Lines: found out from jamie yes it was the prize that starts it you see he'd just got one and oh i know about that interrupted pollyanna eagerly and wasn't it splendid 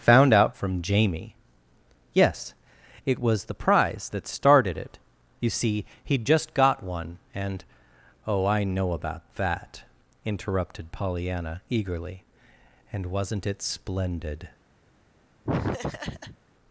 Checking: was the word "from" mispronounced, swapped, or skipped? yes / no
no